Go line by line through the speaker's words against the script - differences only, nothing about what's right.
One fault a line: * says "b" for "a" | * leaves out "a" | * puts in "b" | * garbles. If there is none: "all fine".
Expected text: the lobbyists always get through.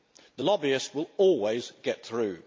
* puts in "will"